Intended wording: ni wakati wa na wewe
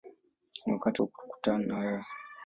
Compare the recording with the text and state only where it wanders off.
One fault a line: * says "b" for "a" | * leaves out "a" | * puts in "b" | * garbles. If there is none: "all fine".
* puts in "kukutana"